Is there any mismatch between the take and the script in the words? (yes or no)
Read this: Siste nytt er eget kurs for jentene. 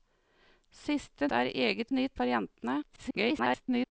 yes